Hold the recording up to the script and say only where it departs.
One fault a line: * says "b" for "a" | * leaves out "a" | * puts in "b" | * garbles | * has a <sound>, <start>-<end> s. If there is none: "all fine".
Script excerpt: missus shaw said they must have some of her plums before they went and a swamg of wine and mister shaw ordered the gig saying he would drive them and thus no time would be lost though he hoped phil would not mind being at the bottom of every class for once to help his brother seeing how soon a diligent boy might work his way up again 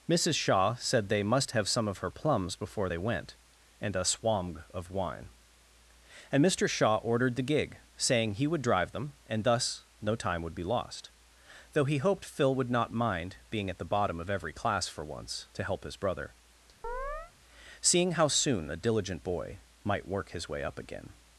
* has a chirp, 16.8-17.3 s